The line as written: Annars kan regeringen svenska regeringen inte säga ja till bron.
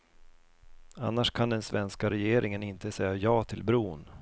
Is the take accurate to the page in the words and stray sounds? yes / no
no